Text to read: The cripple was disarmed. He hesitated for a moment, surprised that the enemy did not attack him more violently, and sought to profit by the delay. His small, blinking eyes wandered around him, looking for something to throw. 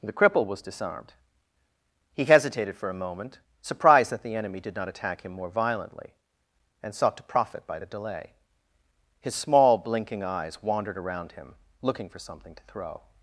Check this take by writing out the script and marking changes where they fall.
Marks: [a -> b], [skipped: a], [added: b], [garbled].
The cripple was disarmed. He hesitated for a moment, surprised that the enemy did not attack him more violently, and sought to profit by the delay. His small, blinking eyes wandered around him, looking for something to throw.